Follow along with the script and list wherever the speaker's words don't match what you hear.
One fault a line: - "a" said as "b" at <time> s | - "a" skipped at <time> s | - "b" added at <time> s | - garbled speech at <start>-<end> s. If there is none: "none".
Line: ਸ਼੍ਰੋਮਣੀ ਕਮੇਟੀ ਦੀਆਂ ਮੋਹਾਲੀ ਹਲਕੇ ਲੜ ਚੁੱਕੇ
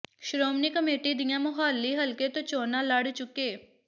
- "ਤੋਂ ਚੋਣਾਂ" added at 2.3 s